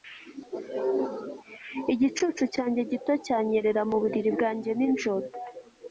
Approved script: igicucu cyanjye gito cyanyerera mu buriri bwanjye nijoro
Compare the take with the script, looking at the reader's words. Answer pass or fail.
pass